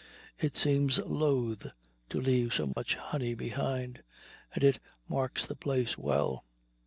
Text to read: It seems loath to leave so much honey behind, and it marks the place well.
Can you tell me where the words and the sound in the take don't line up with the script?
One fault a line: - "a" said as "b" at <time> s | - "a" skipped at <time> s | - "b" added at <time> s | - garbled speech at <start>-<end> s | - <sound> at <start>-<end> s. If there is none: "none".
- dropout at 2.7-2.8 s